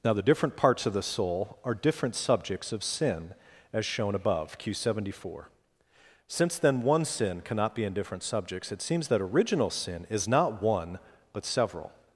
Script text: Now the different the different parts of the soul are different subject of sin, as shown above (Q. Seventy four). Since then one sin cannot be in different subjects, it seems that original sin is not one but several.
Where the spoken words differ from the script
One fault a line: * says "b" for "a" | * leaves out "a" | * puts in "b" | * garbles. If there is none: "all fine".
* leaves out "the different"
* says "subjects" for "subject"